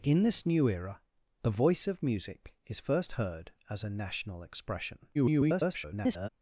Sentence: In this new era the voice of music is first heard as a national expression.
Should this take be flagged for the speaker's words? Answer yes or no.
yes